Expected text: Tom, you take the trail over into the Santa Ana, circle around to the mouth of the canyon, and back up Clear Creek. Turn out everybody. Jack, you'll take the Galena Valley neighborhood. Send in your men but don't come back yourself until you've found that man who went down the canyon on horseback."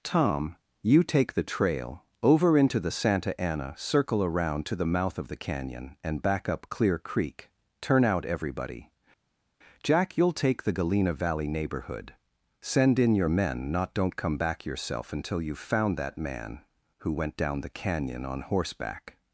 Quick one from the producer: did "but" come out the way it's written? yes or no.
no